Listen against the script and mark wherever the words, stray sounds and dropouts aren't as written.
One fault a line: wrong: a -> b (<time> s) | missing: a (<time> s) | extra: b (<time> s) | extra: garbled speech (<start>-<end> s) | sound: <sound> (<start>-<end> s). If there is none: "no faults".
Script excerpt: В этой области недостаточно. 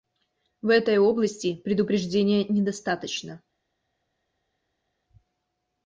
extra: предупреждения (1.6 s)